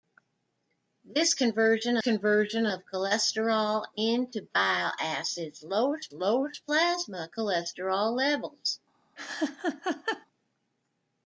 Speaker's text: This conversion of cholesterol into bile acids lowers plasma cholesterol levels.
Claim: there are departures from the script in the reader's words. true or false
true